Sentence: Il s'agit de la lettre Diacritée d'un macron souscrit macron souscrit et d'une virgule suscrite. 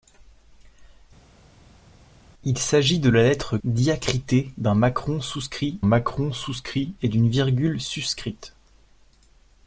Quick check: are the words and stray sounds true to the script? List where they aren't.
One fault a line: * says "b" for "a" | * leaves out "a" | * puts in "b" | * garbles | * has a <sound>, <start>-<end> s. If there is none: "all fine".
all fine